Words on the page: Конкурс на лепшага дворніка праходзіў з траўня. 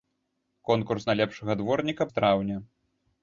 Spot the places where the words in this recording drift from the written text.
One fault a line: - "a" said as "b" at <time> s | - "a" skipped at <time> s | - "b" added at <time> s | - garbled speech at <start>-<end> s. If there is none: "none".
- "праходзіў" skipped at 2.0 s